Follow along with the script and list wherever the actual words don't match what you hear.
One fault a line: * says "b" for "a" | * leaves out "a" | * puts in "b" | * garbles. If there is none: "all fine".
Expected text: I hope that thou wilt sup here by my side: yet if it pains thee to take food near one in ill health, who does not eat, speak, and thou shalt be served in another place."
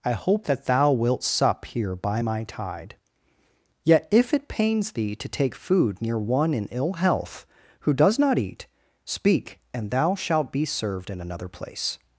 * says "tide" for "side"